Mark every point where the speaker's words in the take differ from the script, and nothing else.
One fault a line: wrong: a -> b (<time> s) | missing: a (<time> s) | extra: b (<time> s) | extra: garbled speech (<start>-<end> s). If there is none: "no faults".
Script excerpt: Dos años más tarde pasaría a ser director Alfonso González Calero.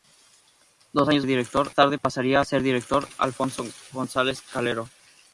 wrong: más -> director (1.3 s)